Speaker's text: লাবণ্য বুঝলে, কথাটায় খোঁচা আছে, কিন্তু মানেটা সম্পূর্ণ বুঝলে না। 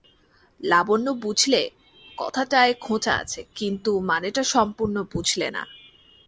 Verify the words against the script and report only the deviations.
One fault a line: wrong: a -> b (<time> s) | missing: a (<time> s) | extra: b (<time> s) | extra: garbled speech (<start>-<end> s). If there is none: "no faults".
no faults